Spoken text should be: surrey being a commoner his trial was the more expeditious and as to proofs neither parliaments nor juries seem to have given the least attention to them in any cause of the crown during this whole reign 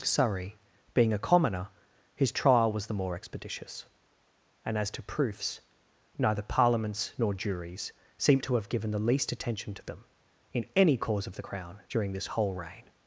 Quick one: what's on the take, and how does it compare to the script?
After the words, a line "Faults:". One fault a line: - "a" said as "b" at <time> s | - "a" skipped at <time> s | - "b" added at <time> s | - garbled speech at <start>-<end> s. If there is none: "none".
surrey being a commoner his trial was the more expeditious and as to proofs neither parliaments nor juries seem to have given the least attention to them in any cause of the crown during this whole reign
Faults:
none